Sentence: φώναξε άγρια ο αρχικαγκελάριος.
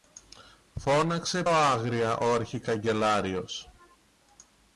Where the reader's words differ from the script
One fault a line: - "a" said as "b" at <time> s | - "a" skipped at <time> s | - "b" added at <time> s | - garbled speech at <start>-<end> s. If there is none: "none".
none